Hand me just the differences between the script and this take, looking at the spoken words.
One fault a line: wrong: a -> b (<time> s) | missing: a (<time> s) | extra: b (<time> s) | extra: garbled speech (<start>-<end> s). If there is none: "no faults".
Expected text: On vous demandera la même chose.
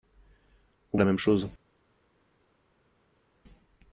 missing: vous demandera (1.0 s)